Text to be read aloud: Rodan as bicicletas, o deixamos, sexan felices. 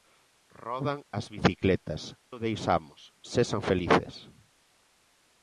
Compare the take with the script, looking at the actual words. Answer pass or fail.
pass